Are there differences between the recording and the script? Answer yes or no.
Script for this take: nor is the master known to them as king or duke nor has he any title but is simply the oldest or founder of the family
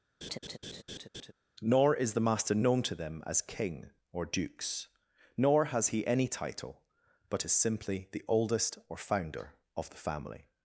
yes